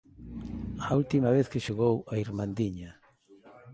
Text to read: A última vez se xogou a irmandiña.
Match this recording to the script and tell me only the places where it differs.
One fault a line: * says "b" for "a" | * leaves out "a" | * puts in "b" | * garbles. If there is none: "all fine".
* says "que" for "se"